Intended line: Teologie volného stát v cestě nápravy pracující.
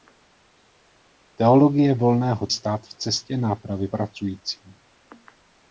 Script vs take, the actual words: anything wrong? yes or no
no